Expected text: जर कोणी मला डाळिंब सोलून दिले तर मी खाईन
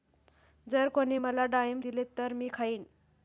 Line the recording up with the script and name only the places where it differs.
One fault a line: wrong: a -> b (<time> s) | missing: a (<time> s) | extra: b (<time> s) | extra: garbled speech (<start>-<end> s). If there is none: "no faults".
missing: सोलून (1.8 s)